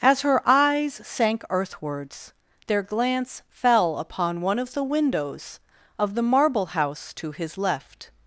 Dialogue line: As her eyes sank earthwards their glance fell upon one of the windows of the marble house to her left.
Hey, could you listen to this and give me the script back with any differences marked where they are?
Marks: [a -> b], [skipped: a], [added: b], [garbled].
As her eyes sank earthwards their glance fell upon one of the windows of the marble house to [her -> his] left.